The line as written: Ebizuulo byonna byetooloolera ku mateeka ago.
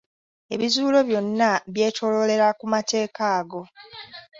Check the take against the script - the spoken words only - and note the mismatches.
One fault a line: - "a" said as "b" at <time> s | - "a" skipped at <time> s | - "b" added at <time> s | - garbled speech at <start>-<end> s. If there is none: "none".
none